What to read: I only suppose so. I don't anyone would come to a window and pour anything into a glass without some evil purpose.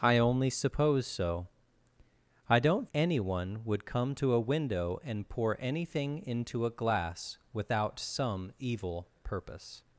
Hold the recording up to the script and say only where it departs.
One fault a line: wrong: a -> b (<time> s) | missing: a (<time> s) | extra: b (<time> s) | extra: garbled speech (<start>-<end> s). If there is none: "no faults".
no faults